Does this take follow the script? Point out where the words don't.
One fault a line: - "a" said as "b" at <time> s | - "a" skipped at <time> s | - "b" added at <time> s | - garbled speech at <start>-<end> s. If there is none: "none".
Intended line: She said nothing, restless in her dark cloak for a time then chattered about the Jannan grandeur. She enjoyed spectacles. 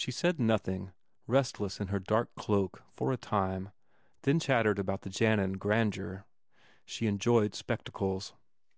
none